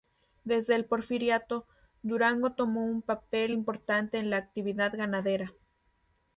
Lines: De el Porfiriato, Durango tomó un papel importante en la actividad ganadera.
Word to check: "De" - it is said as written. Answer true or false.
false